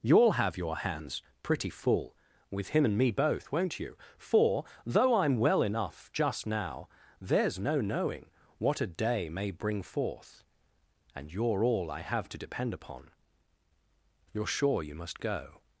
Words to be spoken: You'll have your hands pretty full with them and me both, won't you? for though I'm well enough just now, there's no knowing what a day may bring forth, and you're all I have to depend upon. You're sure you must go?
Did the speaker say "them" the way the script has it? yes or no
no